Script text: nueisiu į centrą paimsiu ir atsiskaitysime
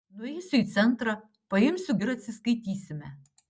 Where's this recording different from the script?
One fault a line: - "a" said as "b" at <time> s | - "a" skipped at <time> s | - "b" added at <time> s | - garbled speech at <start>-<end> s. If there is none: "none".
none